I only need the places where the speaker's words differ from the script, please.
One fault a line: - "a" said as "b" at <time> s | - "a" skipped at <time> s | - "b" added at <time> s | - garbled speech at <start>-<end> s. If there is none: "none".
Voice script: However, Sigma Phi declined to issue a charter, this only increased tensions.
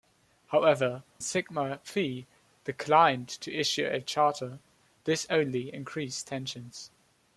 none